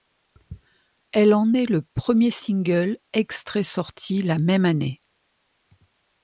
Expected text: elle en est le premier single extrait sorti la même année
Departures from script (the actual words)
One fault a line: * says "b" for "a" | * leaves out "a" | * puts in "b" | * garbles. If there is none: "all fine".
all fine